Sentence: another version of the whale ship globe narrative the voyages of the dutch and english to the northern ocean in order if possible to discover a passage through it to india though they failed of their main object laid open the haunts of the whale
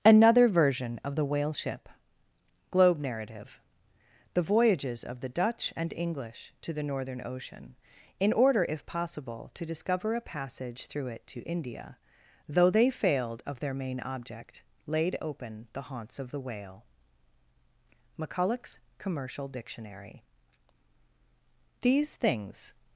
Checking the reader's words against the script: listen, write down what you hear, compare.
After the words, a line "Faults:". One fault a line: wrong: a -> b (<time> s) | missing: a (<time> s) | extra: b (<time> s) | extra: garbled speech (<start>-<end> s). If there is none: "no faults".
another version of the whale ship globe narrative the voyages of the dutch and english to the northern ocean in order if possible to discover a passage through it to india though they failed of their main object laid open the haunts of the whale mcculloch's commercial dictionary these things
Faults:
extra: mcculloch's commercial dictionary these things (18.2 s)